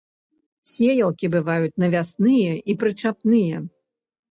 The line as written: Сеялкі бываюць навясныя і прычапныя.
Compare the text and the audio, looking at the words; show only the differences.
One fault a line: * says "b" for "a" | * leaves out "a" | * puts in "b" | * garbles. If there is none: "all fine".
all fine